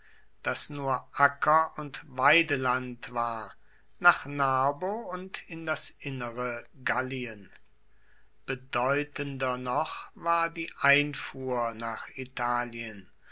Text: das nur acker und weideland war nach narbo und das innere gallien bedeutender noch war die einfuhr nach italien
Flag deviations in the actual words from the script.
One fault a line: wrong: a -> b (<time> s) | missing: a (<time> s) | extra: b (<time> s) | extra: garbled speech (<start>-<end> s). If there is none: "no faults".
extra: in (5.5 s)